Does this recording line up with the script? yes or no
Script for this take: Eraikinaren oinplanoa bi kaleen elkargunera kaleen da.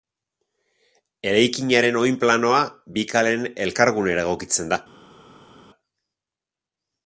no